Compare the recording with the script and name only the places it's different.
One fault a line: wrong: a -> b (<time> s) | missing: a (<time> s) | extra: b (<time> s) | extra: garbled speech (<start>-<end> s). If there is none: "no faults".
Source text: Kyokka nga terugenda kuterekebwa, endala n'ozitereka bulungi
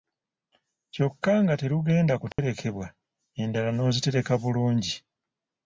no faults